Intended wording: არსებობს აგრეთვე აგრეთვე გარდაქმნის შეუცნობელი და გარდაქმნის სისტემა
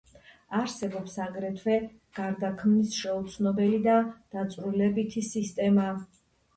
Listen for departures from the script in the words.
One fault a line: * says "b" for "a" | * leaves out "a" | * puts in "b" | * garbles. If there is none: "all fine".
* leaves out "აგრეთვე"
* says "დაწვრილებითი" for "გარდაქმნის"